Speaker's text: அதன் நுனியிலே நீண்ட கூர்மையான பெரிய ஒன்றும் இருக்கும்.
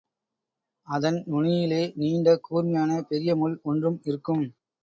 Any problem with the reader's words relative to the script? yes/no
yes